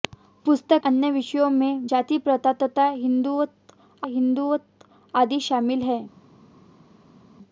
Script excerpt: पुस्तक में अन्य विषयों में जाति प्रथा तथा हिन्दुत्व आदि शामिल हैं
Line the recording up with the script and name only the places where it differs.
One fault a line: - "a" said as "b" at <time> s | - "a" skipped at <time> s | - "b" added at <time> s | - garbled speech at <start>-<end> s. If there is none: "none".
- "में" skipped at 0.8 s
- "हिन्दुत्व" added at 4.0 s